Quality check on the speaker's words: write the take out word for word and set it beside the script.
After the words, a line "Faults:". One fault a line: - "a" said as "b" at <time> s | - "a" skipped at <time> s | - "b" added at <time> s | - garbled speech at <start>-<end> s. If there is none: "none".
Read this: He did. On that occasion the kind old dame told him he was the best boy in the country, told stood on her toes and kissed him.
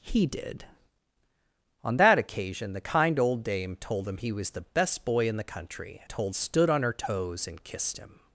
He did. On that occasion the kind old dame told him he was the best boy in the country, told stood on her toes and kissed him.
Faults:
none